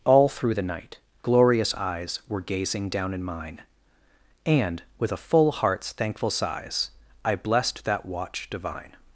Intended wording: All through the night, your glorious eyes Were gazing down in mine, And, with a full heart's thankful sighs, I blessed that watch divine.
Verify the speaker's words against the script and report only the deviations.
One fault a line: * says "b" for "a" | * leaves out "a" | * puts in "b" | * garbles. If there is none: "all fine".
* leaves out "your"